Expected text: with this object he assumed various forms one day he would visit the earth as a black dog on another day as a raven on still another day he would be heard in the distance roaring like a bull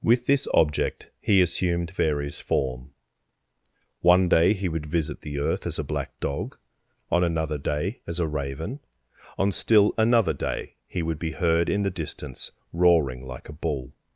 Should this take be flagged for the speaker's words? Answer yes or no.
yes